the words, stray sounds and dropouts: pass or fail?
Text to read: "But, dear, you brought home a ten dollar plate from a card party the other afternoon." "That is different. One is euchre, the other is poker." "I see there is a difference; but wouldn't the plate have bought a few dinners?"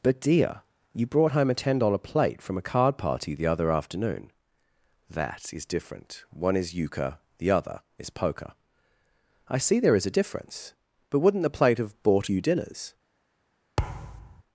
fail